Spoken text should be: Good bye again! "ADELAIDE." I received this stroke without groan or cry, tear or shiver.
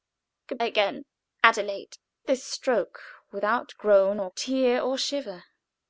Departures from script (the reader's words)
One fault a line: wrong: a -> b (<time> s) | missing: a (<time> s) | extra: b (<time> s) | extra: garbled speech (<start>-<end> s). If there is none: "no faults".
missing: bye (0.6 s)
missing: I received (2.0 s)
missing: cry (4.3 s)